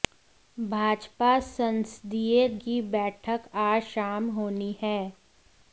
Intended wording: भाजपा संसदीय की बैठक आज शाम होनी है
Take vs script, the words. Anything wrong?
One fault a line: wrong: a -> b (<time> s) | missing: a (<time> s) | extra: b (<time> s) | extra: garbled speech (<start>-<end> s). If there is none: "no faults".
no faults